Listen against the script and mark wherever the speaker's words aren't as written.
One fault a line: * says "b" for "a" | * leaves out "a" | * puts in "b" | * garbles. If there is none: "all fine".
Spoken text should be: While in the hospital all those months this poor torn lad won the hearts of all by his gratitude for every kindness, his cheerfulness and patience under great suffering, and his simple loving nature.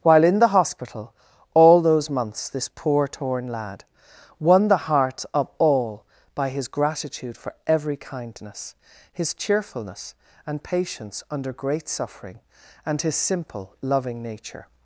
all fine